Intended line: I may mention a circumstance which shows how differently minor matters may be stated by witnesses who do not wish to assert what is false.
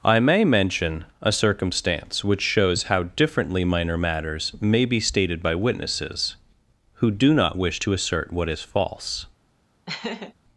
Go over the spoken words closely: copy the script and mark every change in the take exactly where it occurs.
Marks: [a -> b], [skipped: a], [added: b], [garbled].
I may mention a circumstance which shows how differently minor matters may be stated by witnesses who do not wish to assert what is false.